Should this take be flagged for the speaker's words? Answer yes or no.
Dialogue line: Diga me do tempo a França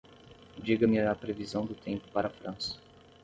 yes